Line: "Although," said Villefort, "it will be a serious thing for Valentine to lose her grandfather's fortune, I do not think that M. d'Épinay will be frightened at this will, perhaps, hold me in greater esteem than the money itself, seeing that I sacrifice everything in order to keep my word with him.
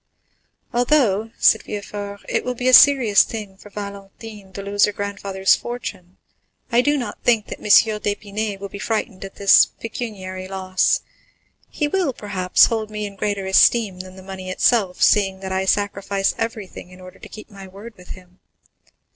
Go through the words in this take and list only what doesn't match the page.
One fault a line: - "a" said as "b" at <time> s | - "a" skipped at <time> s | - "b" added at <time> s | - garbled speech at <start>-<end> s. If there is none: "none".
- "pecuniary loss He" added at 9.8 s